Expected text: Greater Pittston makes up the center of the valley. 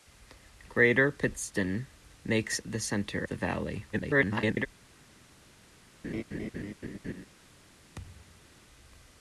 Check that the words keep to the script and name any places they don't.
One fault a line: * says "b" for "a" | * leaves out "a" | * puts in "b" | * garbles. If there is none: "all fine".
* leaves out "up"
* leaves out "of"
* garbles